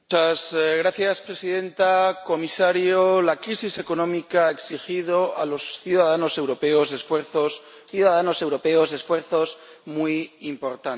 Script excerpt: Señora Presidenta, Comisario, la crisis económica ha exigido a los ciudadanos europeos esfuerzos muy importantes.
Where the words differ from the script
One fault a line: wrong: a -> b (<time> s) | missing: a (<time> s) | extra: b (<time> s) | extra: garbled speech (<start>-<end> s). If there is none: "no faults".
extra: ciudadanos europeos esfuerzos (7.9 s)